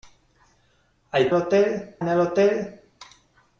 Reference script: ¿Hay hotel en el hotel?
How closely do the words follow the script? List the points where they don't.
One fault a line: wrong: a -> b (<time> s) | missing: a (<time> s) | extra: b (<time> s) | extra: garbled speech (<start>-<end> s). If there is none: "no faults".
no faults